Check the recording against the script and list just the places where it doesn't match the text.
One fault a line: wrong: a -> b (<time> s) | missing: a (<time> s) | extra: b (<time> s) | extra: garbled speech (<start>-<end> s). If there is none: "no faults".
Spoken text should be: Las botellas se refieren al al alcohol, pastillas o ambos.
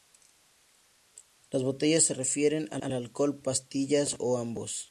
no faults